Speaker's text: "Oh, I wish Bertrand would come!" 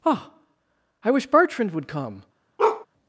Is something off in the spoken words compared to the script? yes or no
no